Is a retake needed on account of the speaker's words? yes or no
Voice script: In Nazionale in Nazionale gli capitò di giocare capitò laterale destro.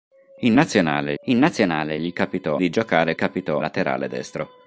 no